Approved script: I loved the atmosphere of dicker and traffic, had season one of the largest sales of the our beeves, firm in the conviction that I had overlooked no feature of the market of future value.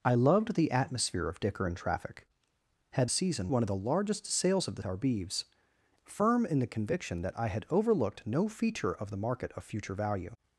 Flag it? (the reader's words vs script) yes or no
no